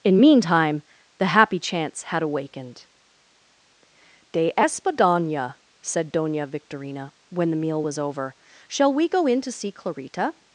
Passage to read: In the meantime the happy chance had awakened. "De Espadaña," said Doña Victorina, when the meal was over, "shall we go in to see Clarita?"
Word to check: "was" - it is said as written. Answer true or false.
true